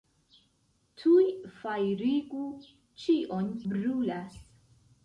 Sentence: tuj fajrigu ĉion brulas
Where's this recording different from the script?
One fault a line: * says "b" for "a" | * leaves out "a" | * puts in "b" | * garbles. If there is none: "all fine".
all fine